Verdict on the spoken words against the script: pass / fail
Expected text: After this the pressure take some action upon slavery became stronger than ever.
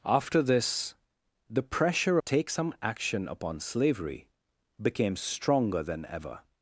pass